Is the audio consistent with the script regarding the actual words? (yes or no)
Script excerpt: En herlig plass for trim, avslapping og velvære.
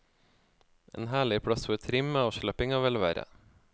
yes